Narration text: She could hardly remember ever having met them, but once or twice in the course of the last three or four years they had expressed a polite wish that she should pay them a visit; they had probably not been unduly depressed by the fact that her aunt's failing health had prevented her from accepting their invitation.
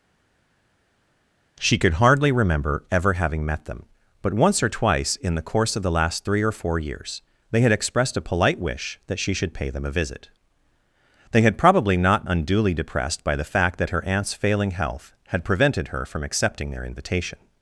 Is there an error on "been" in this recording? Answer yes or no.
yes